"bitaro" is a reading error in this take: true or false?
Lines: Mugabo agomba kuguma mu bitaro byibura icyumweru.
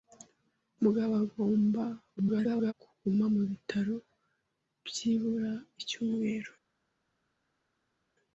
false